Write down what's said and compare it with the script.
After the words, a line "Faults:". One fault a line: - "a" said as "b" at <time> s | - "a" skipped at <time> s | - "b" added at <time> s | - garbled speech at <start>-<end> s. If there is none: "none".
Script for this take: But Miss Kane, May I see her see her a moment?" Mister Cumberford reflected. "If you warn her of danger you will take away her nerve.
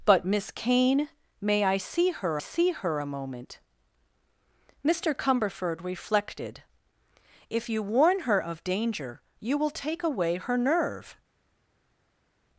But Miss Kane, May I see her see her a moment?" Mister Cumberford reflected. "If you warn her of danger you will take away her nerve.
Faults:
none